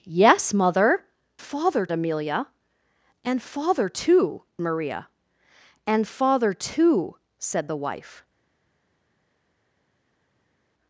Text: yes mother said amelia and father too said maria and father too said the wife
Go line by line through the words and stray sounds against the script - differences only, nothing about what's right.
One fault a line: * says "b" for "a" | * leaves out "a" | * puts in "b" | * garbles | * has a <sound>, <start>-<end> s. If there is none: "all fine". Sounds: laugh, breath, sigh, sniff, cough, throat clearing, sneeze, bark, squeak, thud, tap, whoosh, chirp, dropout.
* says "father" for "said"
* leaves out "said"